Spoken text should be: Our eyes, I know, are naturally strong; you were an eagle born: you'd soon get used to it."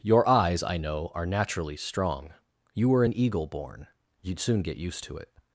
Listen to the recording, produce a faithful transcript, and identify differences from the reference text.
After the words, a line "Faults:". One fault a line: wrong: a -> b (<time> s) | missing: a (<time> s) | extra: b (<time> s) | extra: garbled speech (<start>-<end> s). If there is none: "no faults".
Your eyes, I know, are naturally strong; you were an eagle born: you'd soon get used to it."
Faults:
wrong: Our -> Your (0.0 s)